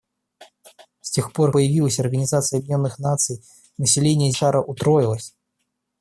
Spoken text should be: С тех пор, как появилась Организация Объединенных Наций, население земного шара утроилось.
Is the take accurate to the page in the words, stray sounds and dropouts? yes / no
no